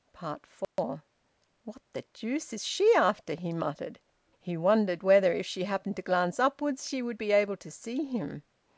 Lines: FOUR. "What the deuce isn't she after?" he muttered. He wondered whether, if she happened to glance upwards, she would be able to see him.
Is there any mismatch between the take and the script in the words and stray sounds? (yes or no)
yes